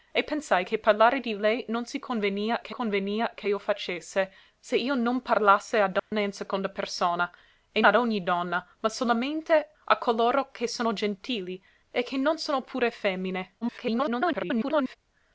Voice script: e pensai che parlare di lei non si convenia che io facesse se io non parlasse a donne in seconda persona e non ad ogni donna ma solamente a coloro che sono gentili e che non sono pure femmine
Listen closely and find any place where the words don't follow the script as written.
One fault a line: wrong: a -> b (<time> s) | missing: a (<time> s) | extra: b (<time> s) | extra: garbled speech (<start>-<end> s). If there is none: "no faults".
extra: convenia che (2.7 s)
missing: non (7.8 s)
extra: garbled speech (13.6-15.0 s)